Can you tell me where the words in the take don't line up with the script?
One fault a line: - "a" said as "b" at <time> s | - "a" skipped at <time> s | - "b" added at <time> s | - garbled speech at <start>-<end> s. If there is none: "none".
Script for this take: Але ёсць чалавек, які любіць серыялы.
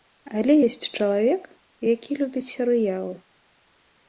none